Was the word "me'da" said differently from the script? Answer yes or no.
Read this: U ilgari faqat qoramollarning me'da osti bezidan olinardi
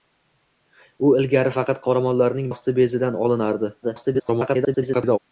yes